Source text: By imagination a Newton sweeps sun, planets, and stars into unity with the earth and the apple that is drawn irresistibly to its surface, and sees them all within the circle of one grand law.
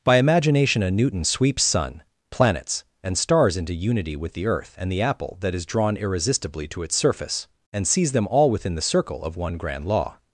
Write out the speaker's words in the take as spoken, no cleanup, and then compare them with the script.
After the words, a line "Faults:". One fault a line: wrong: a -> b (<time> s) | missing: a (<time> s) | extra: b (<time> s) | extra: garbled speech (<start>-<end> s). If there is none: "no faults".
By imagination a Newton sweeps sun, planets, and stars into unity with the earth and the apple that is drawn irresistibly to its surface, and sees them all within the circle of one grand law.
Faults:
no faults